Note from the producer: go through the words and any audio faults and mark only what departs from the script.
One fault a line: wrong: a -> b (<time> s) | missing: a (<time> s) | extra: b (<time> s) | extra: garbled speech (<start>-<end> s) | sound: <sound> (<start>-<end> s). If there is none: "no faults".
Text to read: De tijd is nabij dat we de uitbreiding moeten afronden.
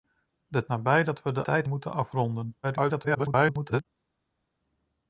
missing: tijd is (0.7 s)
wrong: uitbreiding -> tijd (1.4 s)
extra: garbled speech (2.6-3.9 s)